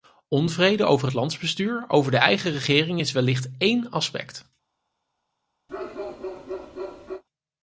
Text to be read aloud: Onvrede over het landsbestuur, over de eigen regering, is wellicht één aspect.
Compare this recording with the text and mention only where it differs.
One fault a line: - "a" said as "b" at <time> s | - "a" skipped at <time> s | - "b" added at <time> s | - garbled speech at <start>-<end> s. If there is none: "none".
none